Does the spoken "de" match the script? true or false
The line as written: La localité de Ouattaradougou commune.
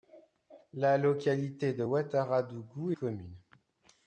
true